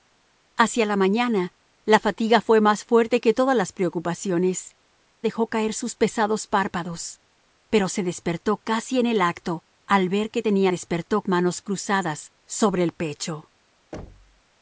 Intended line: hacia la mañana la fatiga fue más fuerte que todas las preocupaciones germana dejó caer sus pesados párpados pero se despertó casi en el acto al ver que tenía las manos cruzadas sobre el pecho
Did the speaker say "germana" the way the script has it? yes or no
no